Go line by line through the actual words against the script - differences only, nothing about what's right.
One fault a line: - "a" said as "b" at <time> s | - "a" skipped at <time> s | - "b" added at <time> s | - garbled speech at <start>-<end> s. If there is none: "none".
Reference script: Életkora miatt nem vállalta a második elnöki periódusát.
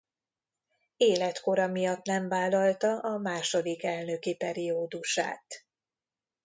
none